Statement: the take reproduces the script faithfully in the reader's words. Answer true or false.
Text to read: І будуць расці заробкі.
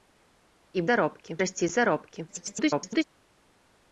false